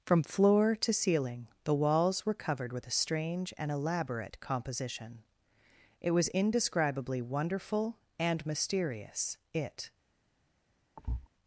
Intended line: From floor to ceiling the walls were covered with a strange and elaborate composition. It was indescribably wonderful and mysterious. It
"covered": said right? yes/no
yes